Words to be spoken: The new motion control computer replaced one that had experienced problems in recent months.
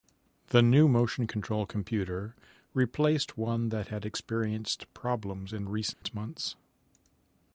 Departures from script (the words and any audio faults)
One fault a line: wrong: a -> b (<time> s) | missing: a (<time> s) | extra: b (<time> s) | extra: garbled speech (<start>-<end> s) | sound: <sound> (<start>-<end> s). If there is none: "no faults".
sound: dropout (5.9-6.0 s)